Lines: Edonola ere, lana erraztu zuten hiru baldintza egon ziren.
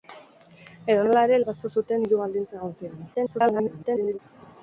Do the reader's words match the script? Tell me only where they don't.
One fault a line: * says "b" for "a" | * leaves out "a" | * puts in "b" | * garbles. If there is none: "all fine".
* leaves out "lana"
* garbles